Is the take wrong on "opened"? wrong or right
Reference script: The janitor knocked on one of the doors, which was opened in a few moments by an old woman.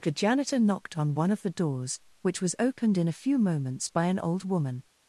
right